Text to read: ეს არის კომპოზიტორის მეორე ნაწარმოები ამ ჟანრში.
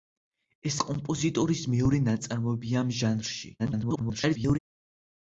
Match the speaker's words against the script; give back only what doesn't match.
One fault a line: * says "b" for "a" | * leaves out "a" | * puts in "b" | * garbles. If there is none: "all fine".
* leaves out "არის"
* garbles